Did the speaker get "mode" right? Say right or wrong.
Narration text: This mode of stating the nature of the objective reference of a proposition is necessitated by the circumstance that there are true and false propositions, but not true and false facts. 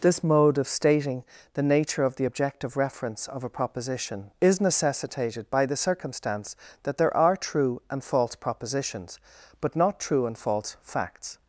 right